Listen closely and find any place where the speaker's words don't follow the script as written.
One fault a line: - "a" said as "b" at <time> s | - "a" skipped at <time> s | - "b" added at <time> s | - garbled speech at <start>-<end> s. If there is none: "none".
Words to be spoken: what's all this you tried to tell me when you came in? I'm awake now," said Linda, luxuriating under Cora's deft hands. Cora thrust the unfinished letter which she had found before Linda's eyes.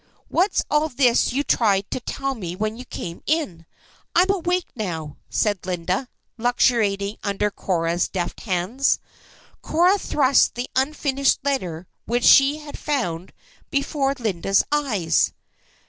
none